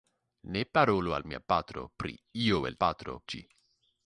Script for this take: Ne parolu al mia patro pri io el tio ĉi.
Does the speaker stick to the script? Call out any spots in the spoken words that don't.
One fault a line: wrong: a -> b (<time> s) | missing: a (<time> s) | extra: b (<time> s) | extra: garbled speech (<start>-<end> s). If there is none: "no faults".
wrong: tio -> patro (2.8 s)